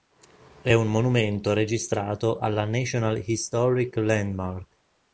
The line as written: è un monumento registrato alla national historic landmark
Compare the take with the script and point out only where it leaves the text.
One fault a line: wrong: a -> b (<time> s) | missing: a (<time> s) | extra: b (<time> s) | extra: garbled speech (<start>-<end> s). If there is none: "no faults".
no faults